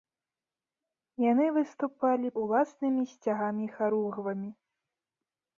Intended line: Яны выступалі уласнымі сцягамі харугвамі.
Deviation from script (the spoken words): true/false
false